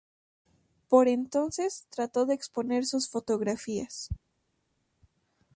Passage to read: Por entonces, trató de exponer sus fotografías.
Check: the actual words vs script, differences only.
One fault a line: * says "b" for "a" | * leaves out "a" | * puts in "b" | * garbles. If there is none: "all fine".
all fine